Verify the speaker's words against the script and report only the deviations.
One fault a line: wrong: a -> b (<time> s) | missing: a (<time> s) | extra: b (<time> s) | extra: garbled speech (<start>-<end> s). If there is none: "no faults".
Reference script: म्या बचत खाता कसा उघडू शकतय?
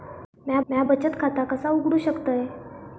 extra: म्या (0.7 s)